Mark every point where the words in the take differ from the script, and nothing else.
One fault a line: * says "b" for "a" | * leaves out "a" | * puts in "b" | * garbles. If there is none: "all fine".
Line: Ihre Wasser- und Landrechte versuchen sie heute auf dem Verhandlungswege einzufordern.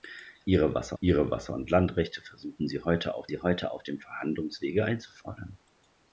* puts in "ihre Wasser"
* puts in "sie heute auf"